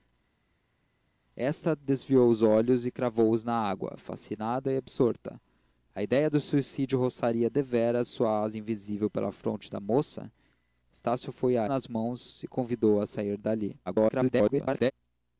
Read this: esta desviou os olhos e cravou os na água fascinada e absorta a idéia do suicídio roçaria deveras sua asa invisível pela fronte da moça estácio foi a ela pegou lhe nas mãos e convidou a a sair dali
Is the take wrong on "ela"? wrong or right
wrong